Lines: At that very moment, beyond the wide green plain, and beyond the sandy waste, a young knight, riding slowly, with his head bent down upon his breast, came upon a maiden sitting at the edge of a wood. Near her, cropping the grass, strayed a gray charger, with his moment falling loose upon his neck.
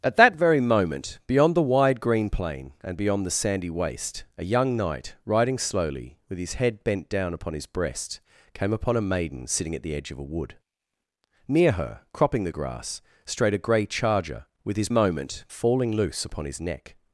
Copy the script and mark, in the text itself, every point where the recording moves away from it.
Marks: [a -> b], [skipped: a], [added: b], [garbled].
At that very moment, beyond the wide green plain, and beyond the sandy waste, a young knight, riding slowly, with his head bent down upon his breast, came upon a maiden sitting at the edge of a wood. Near her, cropping the grass, strayed a gray charger, with his moment falling loose upon his neck.